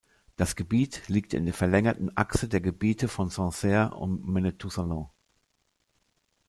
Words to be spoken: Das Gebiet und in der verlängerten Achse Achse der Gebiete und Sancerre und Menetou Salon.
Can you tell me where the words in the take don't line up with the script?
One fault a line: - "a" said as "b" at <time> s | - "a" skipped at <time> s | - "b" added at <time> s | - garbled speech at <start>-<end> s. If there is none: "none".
- "und" said as "liegt" at 1.1 s
- "Achse" skipped at 2.5 s
- "und" said as "von" at 3.1 s